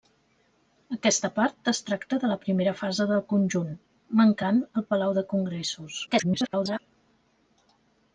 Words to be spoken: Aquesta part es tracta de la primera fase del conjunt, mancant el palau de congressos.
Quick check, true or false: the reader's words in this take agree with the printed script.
false